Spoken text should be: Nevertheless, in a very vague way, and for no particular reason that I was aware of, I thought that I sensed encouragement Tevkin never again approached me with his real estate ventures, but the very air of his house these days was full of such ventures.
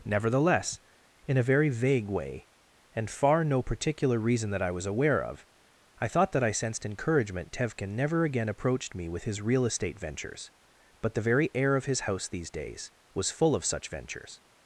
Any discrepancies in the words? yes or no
yes